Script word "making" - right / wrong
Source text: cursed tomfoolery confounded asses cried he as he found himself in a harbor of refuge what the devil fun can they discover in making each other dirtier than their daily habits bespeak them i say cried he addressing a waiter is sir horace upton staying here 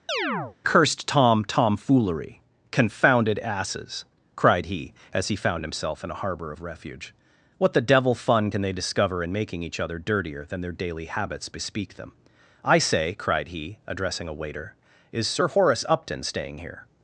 right